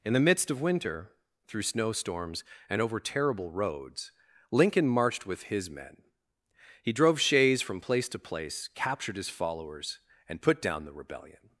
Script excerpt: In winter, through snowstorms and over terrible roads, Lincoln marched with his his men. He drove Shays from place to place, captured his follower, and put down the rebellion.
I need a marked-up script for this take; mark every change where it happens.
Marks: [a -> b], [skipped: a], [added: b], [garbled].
In [added: the midst of] winter, through snowstorms and over terrible roads, Lincoln marched with his [skipped: his] men. He drove Shays from place to place, captured his [follower, -> followers] and put down the rebellion.